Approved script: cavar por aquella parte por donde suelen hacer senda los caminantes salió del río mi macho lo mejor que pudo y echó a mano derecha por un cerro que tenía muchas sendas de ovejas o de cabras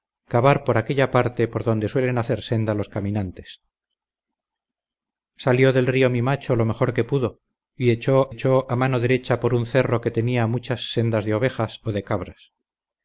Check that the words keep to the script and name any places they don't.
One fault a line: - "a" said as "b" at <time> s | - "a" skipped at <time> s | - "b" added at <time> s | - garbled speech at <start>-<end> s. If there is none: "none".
- "echó" added at 8.3 s